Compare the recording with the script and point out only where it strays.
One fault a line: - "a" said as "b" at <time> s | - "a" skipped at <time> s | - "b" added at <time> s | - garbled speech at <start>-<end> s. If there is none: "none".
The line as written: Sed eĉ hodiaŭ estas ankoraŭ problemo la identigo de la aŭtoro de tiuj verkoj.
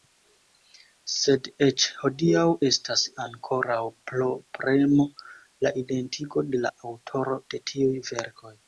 none